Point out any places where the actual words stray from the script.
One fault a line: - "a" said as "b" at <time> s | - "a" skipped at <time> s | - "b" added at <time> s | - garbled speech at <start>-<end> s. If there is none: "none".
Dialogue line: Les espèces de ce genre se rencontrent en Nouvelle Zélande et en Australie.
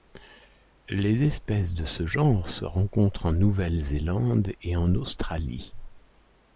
none